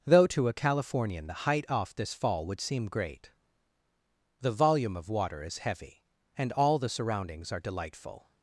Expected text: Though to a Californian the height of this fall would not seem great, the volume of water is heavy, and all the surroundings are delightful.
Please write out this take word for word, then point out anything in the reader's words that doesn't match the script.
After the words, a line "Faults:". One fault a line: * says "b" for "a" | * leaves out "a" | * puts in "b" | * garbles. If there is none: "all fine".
Though to a Californian the height off this fall would seem great, the volume of water is heavy, and all the surroundings are delightful.
Faults:
* says "off" for "of"
* leaves out "not"